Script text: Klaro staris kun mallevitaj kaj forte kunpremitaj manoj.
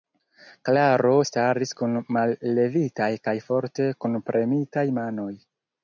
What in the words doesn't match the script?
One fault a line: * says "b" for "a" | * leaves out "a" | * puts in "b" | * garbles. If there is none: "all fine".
all fine